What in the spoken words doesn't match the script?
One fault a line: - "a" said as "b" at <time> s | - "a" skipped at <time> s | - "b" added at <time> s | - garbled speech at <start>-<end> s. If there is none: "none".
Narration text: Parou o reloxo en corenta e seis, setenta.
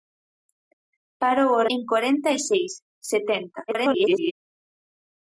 - "reloxo" skipped at 1.6 s
- garbled speech at 3.7-4.3 s